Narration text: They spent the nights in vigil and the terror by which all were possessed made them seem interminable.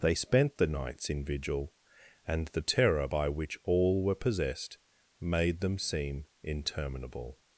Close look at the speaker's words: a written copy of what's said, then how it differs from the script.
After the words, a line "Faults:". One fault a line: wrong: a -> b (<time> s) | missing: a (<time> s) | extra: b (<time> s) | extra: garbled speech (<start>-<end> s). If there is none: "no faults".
They spent the nights in vigil and the terror by which all were possessed made them seem interminable.
Faults:
no faults